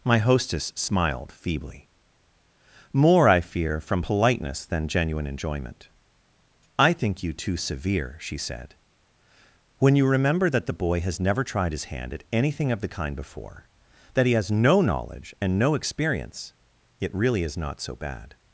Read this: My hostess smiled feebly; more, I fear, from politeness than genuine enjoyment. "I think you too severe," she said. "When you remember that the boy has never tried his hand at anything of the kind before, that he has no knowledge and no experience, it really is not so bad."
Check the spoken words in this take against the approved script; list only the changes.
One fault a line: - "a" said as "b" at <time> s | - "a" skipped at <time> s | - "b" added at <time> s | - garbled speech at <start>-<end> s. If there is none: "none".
none